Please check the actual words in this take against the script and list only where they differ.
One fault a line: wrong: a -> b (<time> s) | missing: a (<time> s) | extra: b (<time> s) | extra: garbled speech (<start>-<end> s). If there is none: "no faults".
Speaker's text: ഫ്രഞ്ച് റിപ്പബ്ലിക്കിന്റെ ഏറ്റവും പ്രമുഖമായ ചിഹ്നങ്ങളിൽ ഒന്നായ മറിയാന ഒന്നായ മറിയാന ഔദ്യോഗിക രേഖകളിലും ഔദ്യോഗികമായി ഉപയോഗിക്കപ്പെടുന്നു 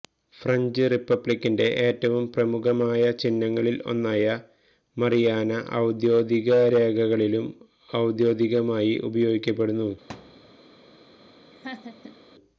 missing: ഒന്നായ മറിയാന (5.5 s)